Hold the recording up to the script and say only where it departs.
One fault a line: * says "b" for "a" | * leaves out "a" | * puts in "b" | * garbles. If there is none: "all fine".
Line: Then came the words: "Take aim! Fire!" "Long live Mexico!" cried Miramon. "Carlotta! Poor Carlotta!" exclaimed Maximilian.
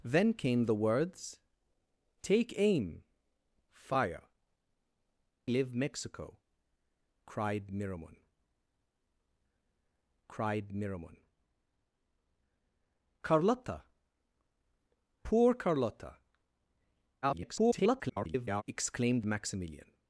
* leaves out "Long"
* puts in "cried Miramon"
* garbles